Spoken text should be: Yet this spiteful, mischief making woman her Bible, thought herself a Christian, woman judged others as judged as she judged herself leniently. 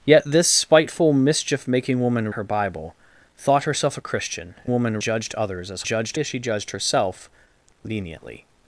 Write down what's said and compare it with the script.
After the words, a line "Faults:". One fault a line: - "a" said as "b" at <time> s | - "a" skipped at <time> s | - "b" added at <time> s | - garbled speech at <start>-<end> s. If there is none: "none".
Yet this spiteful, mischief making woman her Bible, thought herself a Christian, woman judged others as judged as she judged herself leniently.
Faults:
none